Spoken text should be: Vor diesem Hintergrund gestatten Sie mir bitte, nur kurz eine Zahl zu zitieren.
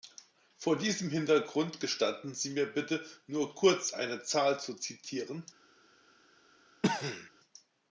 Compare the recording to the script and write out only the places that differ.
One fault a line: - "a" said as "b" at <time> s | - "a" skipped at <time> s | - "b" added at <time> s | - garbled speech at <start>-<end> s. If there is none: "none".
none